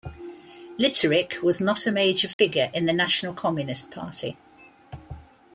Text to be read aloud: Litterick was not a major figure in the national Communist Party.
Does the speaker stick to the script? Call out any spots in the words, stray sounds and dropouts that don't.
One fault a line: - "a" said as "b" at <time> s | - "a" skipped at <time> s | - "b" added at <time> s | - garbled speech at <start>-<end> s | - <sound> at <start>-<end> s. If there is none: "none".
- dropout at 2.3-2.4 s